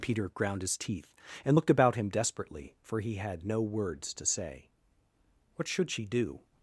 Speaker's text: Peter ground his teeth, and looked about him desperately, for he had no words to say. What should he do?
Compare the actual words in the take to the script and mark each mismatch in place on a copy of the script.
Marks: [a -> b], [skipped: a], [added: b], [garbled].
Peter ground his teeth, and looked about him desperately, for he had no words to say. What should [he -> she] do?